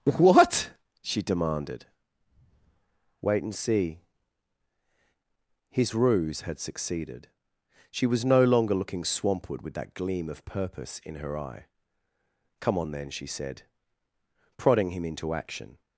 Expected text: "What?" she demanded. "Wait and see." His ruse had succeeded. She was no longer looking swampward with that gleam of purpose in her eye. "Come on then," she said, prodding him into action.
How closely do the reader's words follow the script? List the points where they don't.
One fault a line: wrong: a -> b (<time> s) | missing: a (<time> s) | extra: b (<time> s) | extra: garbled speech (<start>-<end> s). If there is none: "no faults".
no faults